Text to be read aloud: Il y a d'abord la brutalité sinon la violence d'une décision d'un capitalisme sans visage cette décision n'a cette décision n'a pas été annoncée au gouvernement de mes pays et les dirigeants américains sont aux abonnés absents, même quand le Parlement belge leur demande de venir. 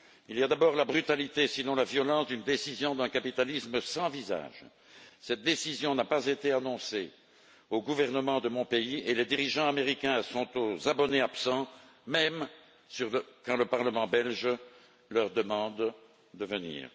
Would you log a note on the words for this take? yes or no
yes